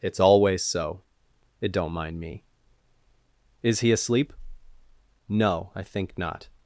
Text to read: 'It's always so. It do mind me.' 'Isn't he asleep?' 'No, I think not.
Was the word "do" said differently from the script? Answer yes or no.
yes